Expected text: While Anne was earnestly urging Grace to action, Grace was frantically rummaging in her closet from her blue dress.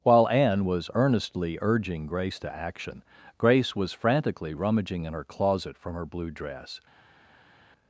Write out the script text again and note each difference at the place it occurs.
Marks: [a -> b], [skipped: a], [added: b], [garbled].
While Anne was earnestly urging Grace to action, Grace was frantically rummaging in her closet from her blue dress.